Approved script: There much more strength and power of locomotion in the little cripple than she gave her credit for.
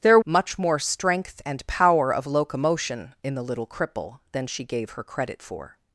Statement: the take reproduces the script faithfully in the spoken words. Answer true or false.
true